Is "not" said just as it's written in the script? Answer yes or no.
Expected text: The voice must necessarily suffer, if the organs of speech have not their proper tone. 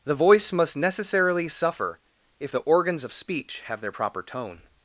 no